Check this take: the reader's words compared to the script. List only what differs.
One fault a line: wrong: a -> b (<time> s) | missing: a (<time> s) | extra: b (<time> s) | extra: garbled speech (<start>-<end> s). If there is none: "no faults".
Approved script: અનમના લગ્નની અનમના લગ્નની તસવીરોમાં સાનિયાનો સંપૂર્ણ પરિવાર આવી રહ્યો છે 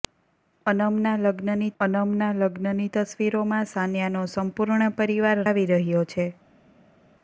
no faults